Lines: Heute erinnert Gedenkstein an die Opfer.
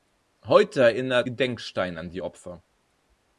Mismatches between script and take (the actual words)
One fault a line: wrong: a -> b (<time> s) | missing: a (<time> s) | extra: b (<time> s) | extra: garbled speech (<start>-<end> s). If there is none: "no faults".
no faults